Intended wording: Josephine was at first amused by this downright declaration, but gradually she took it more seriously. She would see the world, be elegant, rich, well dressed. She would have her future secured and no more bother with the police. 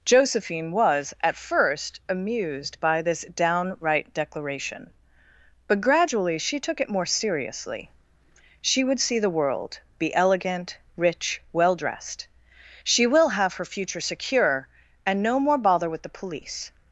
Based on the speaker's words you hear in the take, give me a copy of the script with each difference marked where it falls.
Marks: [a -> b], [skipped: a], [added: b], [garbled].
Josephine was at first amused by this downright declaration, but gradually she took it more seriously. She would see the world, be elegant, rich, well dressed. She [would -> will] have her future [secured -> secure] and no more bother with the police.